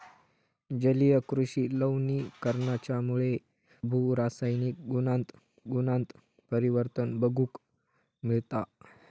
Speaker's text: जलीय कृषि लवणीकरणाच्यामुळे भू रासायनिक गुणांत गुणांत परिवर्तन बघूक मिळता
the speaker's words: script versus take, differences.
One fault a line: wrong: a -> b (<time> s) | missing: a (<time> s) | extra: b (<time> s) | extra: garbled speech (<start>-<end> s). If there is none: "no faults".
no faults